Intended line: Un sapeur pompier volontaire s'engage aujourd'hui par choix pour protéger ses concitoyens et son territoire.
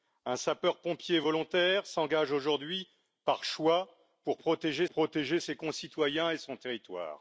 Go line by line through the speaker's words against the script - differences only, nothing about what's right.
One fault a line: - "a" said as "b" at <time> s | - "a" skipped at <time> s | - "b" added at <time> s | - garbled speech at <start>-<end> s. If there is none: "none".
- "protéger" added at 4.9 s